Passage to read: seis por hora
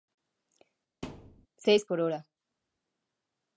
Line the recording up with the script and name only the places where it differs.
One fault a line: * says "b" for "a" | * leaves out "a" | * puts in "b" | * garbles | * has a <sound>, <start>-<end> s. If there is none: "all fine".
* has a thud, 1.0-1.5 s